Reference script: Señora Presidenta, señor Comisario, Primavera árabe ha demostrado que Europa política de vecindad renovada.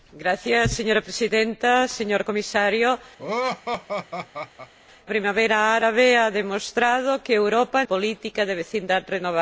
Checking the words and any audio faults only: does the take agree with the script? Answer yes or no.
no